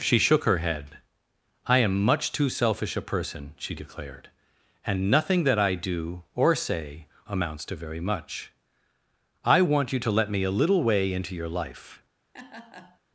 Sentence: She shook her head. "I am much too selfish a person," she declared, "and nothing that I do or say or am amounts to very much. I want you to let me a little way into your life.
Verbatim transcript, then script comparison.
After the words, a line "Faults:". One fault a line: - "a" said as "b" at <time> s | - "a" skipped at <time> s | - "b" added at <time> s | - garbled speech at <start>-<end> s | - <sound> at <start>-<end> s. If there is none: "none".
She shook her head. "I am much too selfish a person," she declared, "and nothing that I do or say amounts to very much. I want you to let me a little way into your life.
Faults:
- "or am" skipped at 7.0 s
- laugh at 12.3-13.0 s